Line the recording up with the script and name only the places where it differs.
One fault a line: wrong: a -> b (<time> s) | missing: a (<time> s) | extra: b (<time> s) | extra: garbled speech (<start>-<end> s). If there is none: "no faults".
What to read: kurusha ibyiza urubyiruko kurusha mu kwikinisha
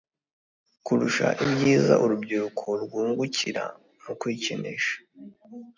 wrong: kurusha -> rwungukira (2.8 s)